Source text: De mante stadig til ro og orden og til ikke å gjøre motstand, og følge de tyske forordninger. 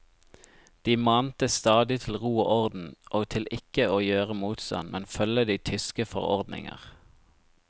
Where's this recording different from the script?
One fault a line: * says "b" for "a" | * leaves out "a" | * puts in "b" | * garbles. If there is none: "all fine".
* says "men" for "og"